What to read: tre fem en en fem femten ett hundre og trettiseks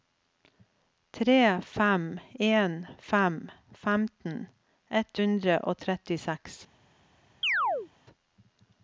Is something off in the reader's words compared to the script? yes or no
yes